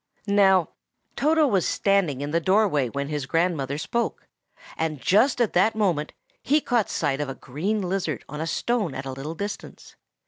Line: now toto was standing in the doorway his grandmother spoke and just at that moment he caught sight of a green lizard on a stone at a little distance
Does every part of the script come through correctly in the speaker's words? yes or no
no